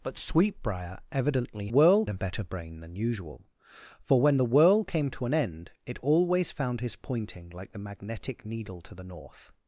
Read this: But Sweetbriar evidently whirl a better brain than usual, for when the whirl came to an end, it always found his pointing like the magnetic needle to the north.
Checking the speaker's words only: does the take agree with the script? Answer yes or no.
yes